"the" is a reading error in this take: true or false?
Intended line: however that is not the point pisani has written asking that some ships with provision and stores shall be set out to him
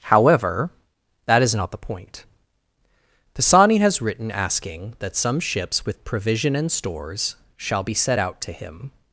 false